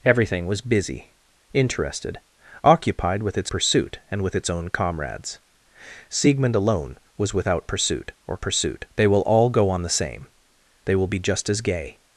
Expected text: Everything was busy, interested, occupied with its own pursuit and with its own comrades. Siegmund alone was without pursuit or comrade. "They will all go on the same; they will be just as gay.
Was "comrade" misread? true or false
true